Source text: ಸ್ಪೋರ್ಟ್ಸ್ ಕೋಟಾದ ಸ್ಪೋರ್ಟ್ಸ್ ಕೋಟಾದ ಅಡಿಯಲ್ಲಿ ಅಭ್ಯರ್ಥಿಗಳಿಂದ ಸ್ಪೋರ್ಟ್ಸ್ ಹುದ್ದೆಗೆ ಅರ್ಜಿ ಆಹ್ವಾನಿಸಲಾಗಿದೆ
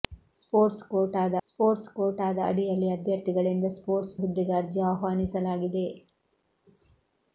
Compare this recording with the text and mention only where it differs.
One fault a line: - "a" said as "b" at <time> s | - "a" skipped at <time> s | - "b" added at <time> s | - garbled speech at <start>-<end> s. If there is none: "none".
none